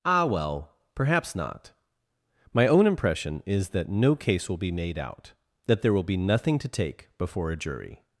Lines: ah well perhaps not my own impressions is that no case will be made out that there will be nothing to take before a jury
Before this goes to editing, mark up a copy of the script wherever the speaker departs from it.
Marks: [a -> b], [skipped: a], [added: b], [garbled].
ah well perhaps not my own [impressions -> impression] is that no case will be made out that there will be nothing to take before a jury